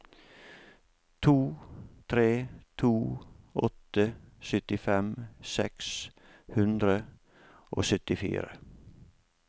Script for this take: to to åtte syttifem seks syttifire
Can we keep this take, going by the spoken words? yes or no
no